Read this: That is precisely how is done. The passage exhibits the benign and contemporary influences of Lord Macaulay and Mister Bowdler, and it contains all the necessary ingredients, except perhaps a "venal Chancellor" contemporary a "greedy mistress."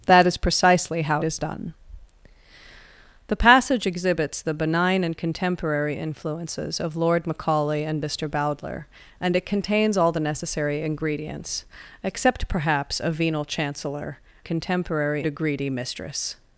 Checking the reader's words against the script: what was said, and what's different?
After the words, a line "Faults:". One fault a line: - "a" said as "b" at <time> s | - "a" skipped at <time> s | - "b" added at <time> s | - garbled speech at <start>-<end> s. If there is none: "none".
That is precisely how is done. The passage exhibits the benign and contemporary influences of Lord Macaulay and Mister Bowdler, and it contains all the necessary ingredients, except perhaps a "venal Chancellor" contemporary a "greedy mistress."
Faults:
none